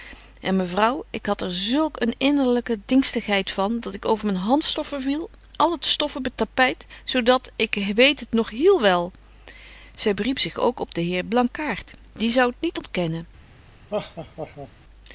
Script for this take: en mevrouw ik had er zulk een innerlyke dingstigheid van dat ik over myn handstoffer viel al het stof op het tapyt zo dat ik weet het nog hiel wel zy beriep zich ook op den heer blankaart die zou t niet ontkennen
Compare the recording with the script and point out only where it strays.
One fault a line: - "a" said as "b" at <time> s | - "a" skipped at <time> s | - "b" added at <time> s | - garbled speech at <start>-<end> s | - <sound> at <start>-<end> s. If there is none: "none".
- laugh at 13.9-14.7 s